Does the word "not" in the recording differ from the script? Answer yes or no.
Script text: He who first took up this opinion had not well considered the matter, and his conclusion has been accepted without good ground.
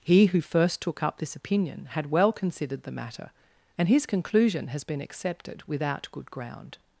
yes